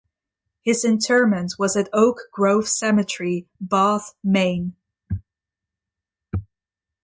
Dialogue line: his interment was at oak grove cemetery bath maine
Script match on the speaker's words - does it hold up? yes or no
yes